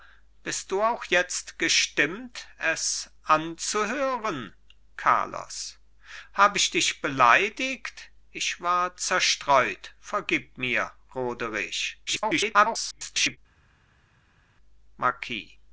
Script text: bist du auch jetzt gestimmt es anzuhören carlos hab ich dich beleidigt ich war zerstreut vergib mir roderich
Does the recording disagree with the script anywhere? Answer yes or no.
yes